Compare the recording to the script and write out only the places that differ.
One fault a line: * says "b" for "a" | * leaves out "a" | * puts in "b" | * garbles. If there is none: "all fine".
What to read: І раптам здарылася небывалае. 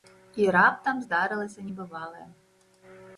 all fine